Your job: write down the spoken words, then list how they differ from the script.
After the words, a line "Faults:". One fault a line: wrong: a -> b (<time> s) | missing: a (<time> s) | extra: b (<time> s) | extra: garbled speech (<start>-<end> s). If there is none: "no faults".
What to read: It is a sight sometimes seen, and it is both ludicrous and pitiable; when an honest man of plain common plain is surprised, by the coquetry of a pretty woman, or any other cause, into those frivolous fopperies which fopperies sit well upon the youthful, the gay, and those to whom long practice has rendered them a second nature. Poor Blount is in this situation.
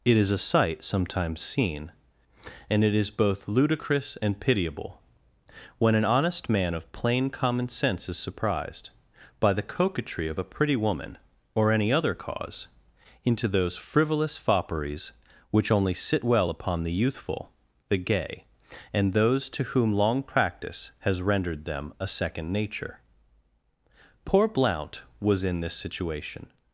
It is a sight sometimes seen, and it is both ludicrous and pitiable; when an honest man of plain common sense is surprised, by the coquetry of a pretty woman, or any other cause, into those frivolous fopperies which only sit well upon the youthful, the gay, and those to whom long practice has rendered them a second nature. Poor Blount was in this situation.
Faults:
wrong: plain -> sense (7.7 s)
wrong: fopperies -> only (15.7 s)
wrong: is -> was (25.2 s)